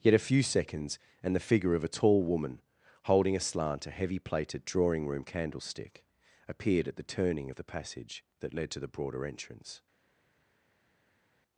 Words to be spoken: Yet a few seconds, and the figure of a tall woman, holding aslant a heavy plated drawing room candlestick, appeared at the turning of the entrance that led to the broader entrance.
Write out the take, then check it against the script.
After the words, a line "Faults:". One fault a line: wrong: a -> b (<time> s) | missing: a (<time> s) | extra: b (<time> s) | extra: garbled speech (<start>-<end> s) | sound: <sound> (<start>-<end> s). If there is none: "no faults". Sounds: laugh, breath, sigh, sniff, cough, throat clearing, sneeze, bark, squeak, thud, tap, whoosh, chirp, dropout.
Yet a few seconds, and the figure of a tall woman, holding aslant a heavy plated drawing room candlestick, appeared at the turning of the passage that led to the broader entrance.
Faults:
wrong: entrance -> passage (7.7 s)